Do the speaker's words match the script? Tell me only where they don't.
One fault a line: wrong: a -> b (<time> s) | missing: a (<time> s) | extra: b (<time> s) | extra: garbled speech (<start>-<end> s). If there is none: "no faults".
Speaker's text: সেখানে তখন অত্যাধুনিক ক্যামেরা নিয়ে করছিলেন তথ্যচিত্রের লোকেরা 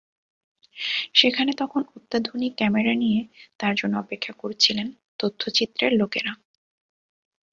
extra: তাঁর জন্য অপেক্ষা (3.6 s)